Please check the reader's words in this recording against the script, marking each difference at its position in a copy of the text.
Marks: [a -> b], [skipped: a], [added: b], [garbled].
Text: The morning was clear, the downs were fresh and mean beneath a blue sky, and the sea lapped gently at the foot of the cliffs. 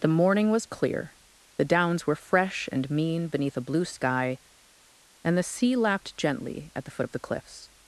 The morning was clear, the downs were fresh and mean beneath a blue sky, and the sea lapped gently at the foot of the cliffs.